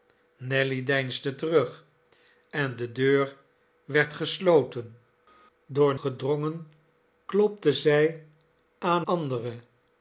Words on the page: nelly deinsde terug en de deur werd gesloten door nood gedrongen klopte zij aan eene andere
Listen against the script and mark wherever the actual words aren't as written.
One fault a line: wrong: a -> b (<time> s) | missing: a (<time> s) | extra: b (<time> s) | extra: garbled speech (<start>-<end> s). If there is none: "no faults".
missing: nood (6.0 s)
missing: eene (9.0 s)